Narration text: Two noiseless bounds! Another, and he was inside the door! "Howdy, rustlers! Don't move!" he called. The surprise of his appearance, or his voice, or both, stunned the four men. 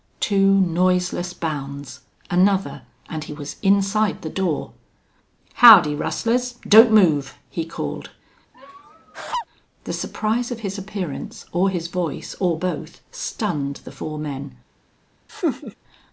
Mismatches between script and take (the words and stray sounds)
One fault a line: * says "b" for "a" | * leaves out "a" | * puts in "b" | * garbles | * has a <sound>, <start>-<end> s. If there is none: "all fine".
* has a laugh, 8.5-9.5 s
* has a laugh, 15.3-15.8 s